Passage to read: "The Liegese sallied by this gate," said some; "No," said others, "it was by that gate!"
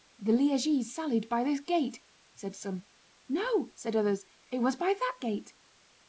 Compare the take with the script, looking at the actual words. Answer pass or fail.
pass